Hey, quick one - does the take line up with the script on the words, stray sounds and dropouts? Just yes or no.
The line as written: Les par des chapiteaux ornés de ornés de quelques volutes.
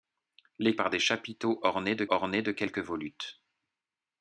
yes